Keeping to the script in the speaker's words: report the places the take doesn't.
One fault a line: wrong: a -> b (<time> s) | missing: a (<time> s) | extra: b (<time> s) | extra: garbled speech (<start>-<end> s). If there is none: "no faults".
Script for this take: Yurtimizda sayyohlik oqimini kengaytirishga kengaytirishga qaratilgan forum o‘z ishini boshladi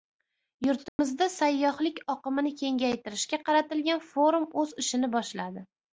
missing: kengaytirishga (3.4 s)